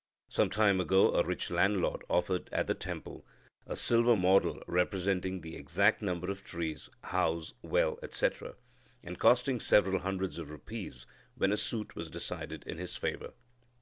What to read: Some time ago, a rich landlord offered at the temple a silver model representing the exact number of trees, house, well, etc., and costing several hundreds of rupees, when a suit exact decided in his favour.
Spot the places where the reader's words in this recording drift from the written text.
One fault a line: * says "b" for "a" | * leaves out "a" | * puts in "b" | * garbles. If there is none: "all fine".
* says "was" for "exact"